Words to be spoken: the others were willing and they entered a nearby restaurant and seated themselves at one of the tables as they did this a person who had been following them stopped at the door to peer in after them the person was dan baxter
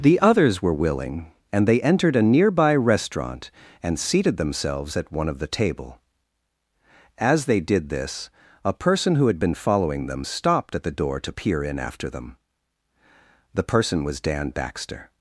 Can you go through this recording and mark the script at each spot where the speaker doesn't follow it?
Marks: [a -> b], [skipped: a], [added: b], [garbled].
the others were willing and they entered a nearby restaurant and seated themselves at one of the [tables -> table] as they did this a person who had been following them stopped at the door to peer in after them the person was dan baxter